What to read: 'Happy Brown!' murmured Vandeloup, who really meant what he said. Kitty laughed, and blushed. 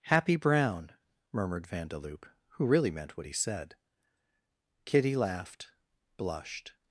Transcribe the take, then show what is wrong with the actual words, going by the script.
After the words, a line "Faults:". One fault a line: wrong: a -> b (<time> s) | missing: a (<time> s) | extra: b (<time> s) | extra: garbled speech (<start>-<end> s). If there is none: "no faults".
'Happy Brown!' murmured Vandeloup, who really meant what he said. Kitty laughed, blushed.
Faults:
missing: and (5.7 s)